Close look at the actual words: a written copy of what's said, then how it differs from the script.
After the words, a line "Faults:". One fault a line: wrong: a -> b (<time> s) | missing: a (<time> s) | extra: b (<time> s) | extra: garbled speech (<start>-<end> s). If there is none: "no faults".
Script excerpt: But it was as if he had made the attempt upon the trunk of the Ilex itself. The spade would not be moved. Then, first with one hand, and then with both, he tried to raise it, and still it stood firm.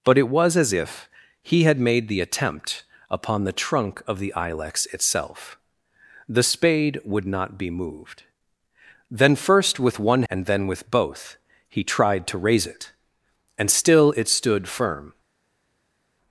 But it was as if he had made the attempt upon the trunk of the Ilex itself. The spade would not be moved. Then, first with one and then with both, he tried to raise it, and still it stood firm.
Faults:
missing: hand (10.2 s)